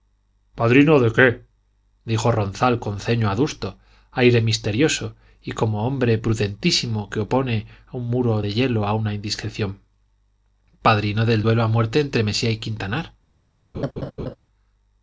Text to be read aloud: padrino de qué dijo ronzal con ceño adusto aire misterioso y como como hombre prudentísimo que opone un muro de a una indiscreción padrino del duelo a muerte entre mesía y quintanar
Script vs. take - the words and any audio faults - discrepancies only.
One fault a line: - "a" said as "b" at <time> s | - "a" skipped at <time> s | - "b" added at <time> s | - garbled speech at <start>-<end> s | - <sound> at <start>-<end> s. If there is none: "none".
- "como" skipped at 5.8 s
- "hielo" added at 8.5 s
- laugh at 13.7-14.4 s